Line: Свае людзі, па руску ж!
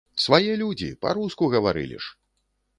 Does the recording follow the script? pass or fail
fail